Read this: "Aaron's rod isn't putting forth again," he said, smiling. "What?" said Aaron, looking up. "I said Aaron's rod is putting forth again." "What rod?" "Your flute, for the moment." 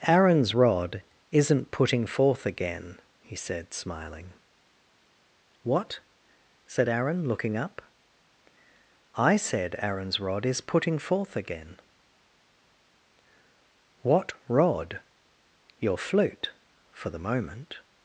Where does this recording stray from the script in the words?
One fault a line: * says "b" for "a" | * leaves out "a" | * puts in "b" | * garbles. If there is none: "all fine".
all fine